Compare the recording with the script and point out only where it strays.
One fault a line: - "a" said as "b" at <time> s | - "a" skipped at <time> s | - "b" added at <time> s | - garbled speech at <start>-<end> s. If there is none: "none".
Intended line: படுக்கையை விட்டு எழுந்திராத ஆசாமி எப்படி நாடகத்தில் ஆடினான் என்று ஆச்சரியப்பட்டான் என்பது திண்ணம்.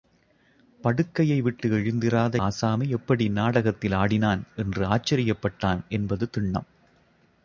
none